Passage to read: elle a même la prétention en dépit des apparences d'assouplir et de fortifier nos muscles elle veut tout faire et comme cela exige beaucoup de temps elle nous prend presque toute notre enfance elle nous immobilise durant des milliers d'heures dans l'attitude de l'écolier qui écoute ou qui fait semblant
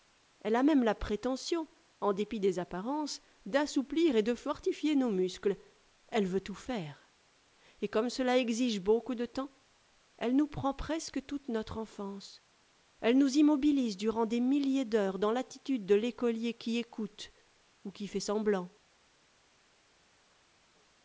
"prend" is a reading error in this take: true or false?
false